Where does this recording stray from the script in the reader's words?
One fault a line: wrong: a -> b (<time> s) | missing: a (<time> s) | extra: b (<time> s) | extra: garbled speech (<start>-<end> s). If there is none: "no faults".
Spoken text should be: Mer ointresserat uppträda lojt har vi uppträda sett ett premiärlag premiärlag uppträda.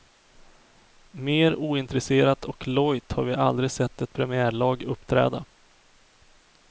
wrong: uppträda -> och (2.5 s)
wrong: uppträda -> aldrig (3.3 s)
missing: premiärlag (4.8 s)